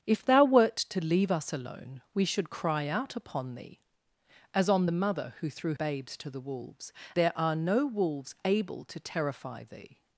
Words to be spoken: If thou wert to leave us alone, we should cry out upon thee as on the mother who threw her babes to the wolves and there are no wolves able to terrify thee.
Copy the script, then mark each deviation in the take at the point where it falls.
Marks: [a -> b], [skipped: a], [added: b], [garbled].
If thou wert to leave us alone, we should cry out upon thee as on the mother who threw [skipped: her] babes to the wolves [skipped: and] there are no wolves able to terrify thee.